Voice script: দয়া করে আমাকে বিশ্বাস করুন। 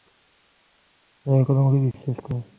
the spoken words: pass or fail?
pass